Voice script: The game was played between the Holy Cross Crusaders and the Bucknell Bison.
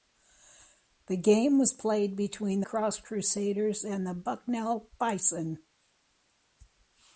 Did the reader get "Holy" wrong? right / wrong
wrong